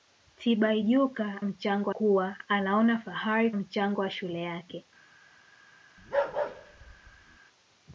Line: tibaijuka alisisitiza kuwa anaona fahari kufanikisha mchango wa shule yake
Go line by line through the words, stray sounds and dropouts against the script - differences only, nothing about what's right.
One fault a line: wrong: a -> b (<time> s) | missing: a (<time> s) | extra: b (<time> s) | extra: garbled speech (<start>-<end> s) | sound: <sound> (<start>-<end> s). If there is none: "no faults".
wrong: alisisitiza -> mchango (1.4 s)
missing: kufanikisha (3.5 s)
sound: bark (6.0-7.4 s)